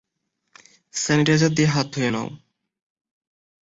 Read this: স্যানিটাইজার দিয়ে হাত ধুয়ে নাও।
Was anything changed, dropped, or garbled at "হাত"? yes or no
no